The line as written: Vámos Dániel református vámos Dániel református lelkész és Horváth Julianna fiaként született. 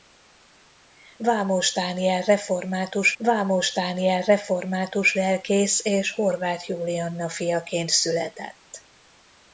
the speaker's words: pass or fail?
pass